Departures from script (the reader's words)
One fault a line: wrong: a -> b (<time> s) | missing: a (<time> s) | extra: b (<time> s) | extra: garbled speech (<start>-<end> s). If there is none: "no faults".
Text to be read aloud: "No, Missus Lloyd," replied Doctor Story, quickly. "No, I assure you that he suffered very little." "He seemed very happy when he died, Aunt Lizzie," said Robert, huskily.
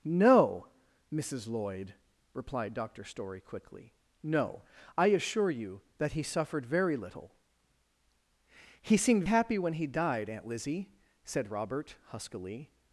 missing: very (9.2 s)